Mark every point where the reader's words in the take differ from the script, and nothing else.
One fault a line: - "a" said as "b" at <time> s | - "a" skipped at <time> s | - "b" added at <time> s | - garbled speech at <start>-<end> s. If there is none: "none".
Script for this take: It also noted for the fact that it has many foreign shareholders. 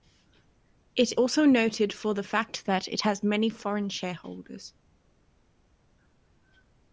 none